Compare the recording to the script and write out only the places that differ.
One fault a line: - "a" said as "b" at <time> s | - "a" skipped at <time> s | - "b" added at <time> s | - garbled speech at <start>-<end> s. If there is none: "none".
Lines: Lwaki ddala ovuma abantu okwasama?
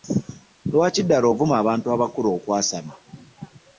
- "abakulu" added at 1.9 s